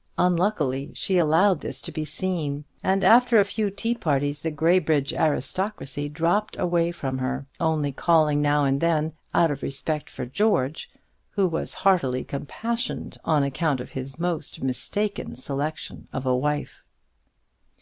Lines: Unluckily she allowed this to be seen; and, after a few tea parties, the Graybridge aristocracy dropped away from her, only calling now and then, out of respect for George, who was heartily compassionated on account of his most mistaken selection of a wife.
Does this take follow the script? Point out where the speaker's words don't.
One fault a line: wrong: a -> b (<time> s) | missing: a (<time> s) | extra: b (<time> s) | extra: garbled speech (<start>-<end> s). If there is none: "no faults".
no faults